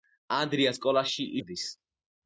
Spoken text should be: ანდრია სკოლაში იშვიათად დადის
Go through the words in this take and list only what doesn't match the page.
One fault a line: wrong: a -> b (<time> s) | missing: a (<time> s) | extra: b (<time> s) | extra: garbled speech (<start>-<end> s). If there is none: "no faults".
missing: იშვიათად (1.3 s)